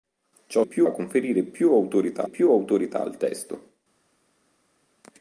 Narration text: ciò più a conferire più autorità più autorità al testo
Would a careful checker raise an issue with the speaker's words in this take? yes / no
no